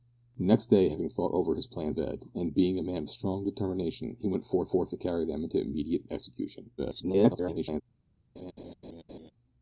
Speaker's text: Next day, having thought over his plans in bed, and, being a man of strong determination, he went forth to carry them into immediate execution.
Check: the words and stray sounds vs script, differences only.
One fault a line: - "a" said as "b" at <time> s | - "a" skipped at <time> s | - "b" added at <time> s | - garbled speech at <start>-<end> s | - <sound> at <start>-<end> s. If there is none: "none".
- "in" skipped at 2.0 s
- "forth" added at 4.7 s
- garbled speech at 6.8-7.8 s
- laugh at 8.4-9.3 s